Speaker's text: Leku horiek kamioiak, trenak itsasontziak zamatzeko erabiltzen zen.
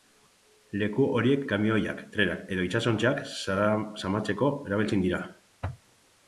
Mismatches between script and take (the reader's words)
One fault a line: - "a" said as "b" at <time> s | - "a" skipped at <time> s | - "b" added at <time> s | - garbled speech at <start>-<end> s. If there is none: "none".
- "edo" added at 2.6 s
- "zen" said as "dira" at 5.1 s